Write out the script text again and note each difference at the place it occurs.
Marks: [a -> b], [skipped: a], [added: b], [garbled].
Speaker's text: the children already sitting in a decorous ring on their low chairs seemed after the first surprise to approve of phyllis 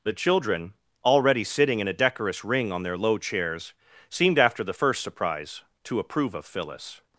the children already sitting in a decorous ring on their low chairs seemed after the first surprise to approve of phyllis